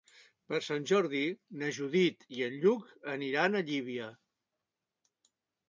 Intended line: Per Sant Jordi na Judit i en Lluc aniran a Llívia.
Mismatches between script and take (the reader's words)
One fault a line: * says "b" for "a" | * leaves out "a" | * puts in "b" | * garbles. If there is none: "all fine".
all fine